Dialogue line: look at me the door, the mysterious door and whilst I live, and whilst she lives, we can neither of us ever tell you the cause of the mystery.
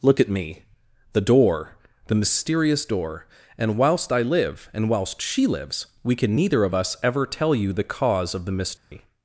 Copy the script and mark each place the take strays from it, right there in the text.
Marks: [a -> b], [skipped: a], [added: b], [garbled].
look at me the door, the mysterious door and whilst I live, and whilst she lives, we can neither of us ever tell you the cause of the mystery.